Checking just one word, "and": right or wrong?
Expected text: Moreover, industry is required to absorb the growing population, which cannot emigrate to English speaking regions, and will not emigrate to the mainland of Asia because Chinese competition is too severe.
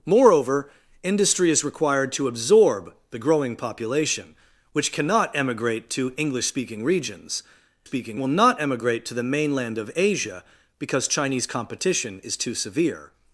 wrong